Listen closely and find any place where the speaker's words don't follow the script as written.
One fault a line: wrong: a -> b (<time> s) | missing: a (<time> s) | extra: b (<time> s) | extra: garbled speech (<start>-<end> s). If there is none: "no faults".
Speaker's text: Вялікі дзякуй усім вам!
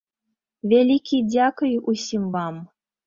no faults